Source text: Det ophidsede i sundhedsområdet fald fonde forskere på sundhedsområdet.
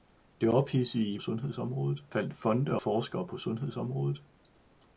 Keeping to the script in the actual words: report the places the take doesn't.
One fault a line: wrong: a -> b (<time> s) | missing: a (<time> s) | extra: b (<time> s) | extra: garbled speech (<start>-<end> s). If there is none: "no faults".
no faults